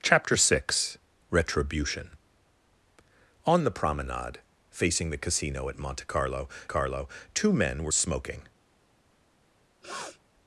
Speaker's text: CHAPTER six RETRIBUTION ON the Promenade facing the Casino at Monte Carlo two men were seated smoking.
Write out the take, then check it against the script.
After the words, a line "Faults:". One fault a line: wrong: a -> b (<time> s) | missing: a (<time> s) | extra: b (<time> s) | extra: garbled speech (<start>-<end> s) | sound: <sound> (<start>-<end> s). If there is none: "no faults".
CHAPTER six RETRIBUTION ON the Promenade facing the Casino at Monte Carlo Carlo two men were smoking.
Faults:
extra: Carlo (6.7 s)
missing: seated (7.9 s)
sound: sniff (9.8-10.2 s)